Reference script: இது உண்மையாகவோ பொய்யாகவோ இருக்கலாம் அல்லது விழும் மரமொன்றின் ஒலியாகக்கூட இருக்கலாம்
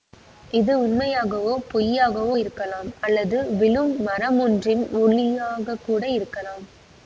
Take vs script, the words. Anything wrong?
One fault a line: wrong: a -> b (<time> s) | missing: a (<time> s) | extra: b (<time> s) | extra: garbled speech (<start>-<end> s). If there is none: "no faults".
no faults